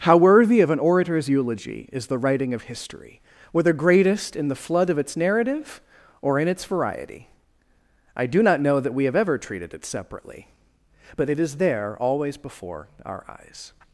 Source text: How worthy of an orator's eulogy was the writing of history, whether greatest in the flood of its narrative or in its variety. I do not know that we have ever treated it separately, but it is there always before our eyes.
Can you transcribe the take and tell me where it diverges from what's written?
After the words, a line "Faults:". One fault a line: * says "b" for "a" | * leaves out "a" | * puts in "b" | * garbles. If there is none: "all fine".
How worthy of an orator's eulogy is the writing of history, whether greatest in the flood of its narrative or in its variety. I do not know that we have ever treated it separately, but it is there always before our eyes.
Faults:
* says "is" for "was"